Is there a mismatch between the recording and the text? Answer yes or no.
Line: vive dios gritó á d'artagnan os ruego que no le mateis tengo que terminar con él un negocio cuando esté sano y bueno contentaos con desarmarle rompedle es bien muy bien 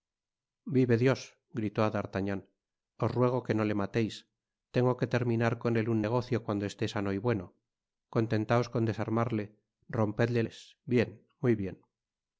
no